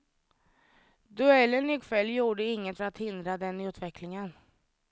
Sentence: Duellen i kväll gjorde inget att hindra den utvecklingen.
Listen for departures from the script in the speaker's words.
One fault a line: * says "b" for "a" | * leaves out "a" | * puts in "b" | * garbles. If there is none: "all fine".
all fine